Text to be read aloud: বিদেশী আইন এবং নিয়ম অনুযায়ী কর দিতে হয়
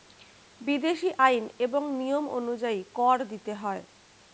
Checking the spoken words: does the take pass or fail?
pass